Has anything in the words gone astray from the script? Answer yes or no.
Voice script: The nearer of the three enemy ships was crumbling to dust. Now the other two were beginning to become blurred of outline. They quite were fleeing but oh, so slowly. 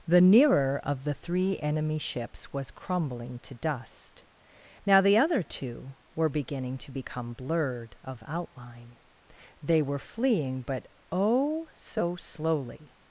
yes